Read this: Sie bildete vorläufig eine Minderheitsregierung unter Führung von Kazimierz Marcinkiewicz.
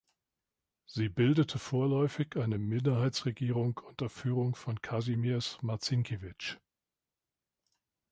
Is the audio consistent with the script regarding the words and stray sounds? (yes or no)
yes